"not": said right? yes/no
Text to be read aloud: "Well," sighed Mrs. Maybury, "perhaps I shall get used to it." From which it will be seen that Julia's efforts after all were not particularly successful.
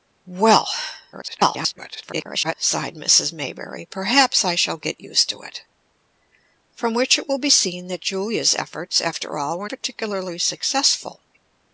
no